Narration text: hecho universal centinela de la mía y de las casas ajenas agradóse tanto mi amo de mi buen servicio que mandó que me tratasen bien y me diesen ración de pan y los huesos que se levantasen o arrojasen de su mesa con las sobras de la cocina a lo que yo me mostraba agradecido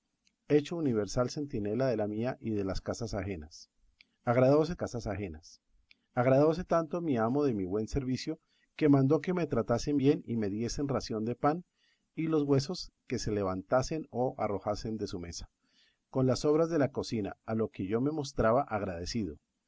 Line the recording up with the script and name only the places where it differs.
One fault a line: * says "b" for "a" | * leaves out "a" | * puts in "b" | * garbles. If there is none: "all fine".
* puts in "casas ajenas agradóse"